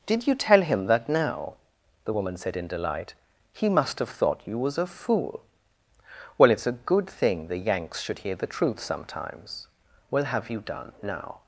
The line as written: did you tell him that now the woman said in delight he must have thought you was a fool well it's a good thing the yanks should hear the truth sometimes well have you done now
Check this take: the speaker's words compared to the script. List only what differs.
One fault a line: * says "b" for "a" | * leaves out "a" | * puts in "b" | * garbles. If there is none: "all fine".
all fine